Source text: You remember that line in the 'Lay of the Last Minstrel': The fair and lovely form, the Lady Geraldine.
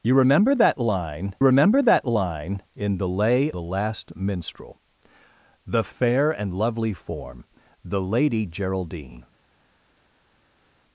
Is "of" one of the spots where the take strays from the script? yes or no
yes